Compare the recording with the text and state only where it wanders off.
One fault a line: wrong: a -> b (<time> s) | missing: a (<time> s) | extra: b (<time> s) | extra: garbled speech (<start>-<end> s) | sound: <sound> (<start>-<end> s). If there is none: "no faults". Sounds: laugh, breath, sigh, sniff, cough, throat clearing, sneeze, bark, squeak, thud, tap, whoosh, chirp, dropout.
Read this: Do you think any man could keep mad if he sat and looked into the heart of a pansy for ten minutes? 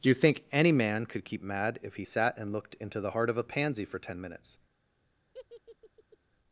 sound: laugh (5.3-6.2 s)